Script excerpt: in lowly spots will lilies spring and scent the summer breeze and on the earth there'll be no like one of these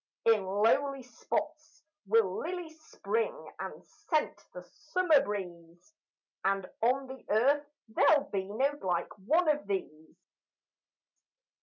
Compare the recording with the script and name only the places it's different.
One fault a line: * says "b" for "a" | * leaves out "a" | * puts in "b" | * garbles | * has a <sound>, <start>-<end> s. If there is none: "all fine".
all fine